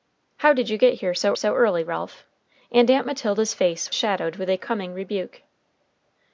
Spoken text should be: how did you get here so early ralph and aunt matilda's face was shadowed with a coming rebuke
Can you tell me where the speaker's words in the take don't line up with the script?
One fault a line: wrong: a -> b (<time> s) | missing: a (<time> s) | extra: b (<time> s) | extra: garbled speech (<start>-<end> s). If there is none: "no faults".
extra: so (1.3 s)
missing: was (3.9 s)